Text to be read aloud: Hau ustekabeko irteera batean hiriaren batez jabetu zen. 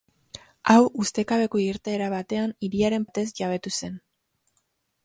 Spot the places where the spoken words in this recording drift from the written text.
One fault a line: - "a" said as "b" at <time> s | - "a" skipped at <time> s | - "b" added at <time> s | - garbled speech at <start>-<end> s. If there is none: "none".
none